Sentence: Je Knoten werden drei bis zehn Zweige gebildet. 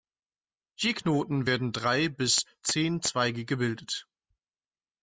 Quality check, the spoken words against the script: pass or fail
pass